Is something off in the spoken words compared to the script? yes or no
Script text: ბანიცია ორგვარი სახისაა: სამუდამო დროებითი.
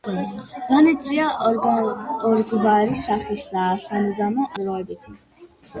no